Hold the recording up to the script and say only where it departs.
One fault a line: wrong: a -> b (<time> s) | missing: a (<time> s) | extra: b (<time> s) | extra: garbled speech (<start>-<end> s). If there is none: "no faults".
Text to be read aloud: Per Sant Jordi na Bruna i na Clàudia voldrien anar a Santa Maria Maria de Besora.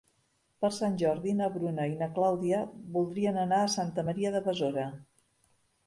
missing: Maria (4.3 s)